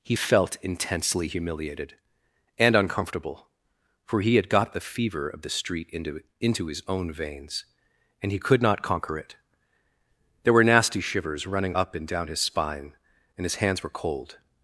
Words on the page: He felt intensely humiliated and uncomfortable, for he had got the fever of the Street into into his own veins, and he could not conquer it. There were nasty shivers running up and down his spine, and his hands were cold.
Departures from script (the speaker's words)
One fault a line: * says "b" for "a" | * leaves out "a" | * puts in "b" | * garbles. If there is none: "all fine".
all fine